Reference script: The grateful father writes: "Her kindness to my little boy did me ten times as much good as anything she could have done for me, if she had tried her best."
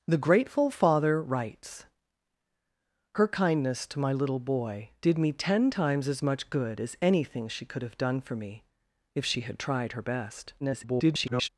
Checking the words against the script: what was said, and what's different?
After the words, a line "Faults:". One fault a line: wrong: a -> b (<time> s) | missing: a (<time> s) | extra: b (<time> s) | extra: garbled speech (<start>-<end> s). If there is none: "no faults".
The grateful father writes: "Her kindness to my little boy did me ten times as much good as anything she could have done for me, if she had tried her best." [garbled]
Faults:
extra: garbled speech (10.6-11.5 s)